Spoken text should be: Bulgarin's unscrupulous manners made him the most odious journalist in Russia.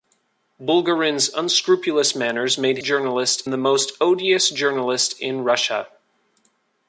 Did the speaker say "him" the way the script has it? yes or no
no